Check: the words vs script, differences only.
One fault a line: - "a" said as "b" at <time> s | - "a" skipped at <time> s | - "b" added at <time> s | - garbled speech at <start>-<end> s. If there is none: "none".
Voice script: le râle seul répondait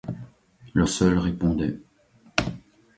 - "râle" skipped at 0.8 s